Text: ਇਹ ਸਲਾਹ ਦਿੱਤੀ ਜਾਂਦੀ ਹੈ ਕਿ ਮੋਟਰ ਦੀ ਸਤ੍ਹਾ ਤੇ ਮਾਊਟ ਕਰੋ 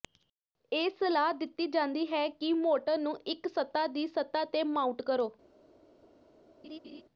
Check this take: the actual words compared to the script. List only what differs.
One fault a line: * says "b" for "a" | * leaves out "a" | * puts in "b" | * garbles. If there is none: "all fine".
* puts in "ਨੂੰ ਇੱਕ ਸਤ੍ਹਾ"